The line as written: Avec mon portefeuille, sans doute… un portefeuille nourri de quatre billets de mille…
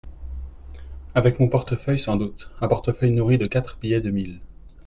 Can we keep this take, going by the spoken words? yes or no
yes